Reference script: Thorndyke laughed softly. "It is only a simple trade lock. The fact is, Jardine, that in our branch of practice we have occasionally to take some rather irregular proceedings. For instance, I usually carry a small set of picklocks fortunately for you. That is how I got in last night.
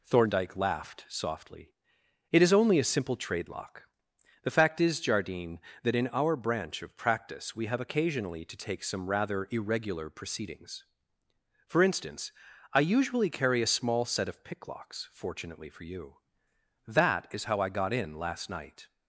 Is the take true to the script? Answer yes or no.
yes